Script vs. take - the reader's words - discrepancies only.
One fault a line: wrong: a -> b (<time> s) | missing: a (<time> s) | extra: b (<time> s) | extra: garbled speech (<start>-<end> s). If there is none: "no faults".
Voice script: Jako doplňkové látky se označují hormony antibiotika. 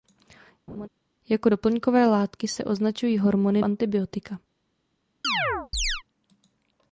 no faults